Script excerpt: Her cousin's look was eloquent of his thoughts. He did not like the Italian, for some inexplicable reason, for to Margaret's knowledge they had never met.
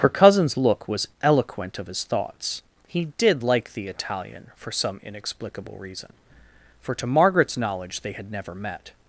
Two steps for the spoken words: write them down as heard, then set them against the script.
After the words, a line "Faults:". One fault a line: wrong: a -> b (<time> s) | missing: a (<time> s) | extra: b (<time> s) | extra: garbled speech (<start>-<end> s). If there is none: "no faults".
Her cousin's look was eloquent of his thoughts. He did like the Italian, for some inexplicable reason, for to Margaret's knowledge they had never met.
Faults:
missing: not (3.4 s)